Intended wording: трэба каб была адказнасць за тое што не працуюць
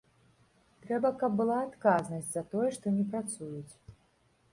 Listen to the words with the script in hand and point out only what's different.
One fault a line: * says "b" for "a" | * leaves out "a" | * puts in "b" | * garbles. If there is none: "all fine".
all fine